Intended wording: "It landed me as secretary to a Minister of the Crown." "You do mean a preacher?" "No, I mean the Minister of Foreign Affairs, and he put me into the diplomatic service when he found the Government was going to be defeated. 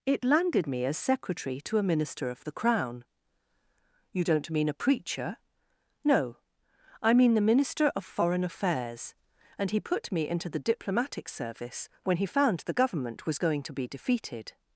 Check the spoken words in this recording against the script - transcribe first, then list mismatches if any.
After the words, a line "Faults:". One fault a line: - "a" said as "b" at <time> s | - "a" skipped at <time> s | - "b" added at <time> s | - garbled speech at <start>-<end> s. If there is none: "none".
"It landed me as secretary to a Minister of the Crown." "You don't mean a preacher?" "No, I mean the Minister of Foreign Affairs, and he put me into the diplomatic service when he found the Government was going to be defeated.
Faults:
- "do" said as "don't" at 4.2 s